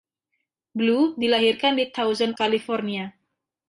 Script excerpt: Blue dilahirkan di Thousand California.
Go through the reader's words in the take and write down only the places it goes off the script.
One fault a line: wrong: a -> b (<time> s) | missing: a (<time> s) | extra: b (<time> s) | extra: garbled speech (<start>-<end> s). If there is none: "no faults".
no faults